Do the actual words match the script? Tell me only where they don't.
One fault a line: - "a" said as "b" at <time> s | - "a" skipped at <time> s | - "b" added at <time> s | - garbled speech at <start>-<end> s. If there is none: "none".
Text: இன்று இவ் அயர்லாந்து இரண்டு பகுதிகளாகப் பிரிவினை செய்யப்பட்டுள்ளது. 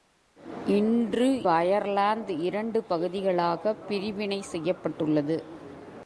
- "இவ்" skipped at 1.5 s